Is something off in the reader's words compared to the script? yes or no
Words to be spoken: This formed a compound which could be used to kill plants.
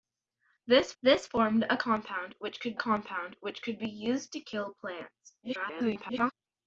yes